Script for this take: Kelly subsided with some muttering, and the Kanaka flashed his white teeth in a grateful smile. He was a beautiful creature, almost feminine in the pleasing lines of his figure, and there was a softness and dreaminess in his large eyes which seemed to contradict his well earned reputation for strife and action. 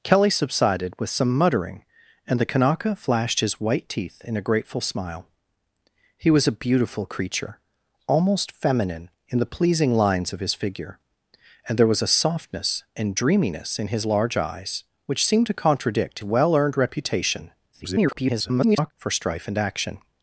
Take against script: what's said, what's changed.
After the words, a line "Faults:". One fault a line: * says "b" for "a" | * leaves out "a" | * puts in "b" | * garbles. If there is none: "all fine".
Kelly subsided with some muttering, and the Kanaka flashed his white teeth in a grateful smile. He was a beautiful creature, almost feminine in the pleasing lines of his figure, and there was a softness and dreaminess in his large eyes which seemed to contradict well earned reputation [garbled] for strife and action.
Faults:
* leaves out "his"
* garbles